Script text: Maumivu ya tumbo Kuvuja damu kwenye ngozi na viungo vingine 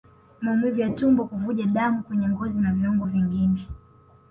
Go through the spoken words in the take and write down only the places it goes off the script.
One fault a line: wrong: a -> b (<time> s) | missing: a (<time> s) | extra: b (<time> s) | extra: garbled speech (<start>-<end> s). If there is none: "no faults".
no faults